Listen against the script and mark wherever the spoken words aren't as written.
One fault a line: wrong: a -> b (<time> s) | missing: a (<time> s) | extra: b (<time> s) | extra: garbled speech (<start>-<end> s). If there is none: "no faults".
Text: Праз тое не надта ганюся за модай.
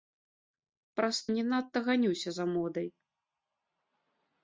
missing: тое (1.2 s)